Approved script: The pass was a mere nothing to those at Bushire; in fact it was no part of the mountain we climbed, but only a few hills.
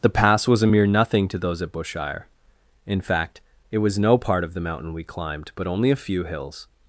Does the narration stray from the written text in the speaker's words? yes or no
no